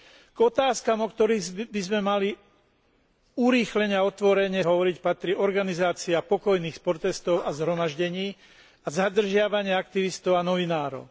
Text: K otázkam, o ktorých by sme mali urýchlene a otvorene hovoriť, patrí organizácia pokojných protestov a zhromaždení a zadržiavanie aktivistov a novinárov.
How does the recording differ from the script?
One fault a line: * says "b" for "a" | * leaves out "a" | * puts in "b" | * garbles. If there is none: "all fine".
all fine